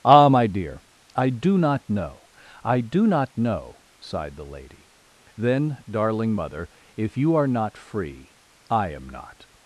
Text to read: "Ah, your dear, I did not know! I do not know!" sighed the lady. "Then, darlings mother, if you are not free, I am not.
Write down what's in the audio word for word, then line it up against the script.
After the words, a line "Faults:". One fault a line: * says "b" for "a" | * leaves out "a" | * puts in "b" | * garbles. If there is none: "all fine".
"Ah, my dear, I do not know! I do not know!" sighed the lady. "Then, darling mother, if you are not free, I am not.
Faults:
* says "my" for "your"
* says "do" for "did"
* says "darling" for "darlings"